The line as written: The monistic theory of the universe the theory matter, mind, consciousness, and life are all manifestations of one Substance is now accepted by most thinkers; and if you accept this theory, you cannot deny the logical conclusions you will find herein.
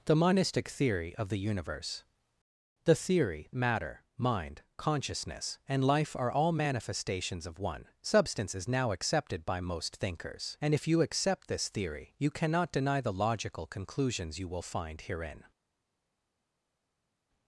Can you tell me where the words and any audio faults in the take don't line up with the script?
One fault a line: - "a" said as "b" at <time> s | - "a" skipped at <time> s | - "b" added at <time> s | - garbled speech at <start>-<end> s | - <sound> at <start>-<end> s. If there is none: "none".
none